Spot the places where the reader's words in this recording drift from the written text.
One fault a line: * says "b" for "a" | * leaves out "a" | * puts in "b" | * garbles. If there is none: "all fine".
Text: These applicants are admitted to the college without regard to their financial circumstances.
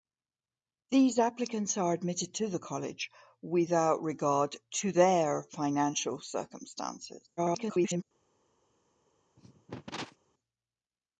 * garbles